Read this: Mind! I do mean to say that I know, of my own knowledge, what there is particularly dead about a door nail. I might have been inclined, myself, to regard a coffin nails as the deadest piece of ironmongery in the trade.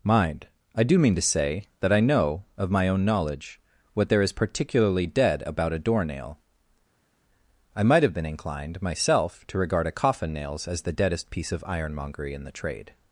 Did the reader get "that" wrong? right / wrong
right